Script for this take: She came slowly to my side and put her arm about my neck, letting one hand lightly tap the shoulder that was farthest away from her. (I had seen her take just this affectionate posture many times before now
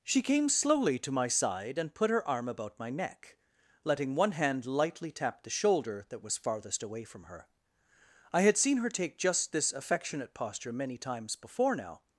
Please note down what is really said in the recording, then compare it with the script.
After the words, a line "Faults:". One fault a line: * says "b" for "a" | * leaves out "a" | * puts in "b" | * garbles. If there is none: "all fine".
She came slowly to my side and put her arm about my neck, letting one hand lightly tap the shoulder that was farthest away from her. (I had seen her take just this affectionate posture many times before now
Faults:
all fine